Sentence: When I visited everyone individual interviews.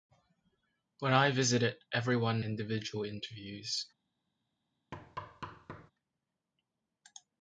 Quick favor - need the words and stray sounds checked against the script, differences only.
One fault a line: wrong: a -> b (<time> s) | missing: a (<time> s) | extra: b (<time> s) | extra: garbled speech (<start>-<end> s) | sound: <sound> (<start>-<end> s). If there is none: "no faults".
sound: thud (4.9-5.9 s)